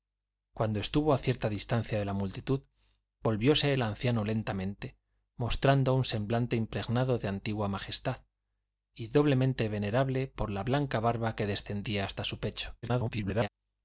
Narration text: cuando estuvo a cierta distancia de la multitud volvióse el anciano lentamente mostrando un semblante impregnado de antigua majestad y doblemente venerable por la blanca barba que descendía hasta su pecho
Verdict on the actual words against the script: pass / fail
fail